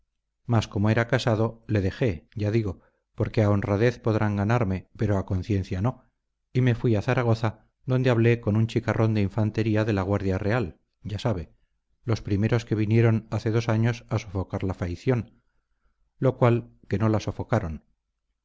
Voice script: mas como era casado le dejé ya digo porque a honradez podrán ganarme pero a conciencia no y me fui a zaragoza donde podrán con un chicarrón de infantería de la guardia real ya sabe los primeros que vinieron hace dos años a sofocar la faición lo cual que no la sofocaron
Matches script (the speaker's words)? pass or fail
fail